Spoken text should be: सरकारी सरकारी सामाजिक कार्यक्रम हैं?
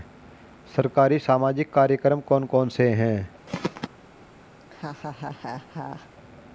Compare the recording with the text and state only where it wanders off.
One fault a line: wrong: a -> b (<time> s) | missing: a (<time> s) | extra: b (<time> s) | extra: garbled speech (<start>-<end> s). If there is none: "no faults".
missing: सरकारी (1.2 s)
extra: कौन कौन से (2.2 s)